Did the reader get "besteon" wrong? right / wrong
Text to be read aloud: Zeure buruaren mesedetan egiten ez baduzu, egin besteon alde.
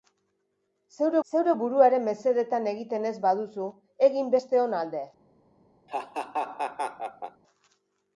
right